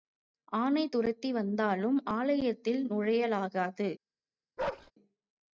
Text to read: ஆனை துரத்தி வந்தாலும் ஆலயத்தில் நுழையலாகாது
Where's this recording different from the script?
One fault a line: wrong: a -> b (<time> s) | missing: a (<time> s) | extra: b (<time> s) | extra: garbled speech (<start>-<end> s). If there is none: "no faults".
no faults